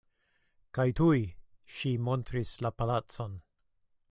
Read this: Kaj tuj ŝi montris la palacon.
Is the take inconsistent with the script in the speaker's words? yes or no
no